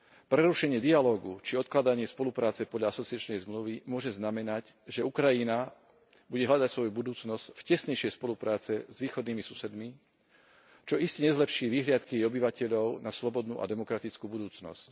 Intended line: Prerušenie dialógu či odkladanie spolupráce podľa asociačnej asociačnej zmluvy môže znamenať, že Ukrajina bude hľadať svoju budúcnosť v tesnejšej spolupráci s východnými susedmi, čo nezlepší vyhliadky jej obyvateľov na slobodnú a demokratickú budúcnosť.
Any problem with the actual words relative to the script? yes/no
yes